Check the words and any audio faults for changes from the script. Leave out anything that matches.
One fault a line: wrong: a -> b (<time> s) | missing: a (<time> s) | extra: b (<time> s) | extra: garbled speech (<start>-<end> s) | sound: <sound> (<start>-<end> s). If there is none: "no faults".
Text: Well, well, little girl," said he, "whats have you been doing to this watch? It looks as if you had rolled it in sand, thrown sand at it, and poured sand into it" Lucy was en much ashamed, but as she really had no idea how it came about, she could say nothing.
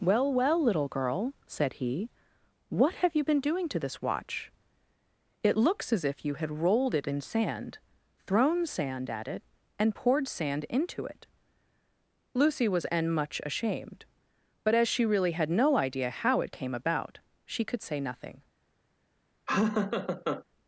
wrong: whats -> what (2.7 s)
sound: laugh (19.5-20.4 s)